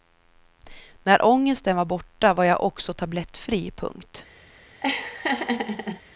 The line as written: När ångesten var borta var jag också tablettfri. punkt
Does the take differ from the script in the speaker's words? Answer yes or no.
no